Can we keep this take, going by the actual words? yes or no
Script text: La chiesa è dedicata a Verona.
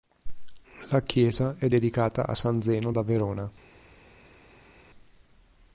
no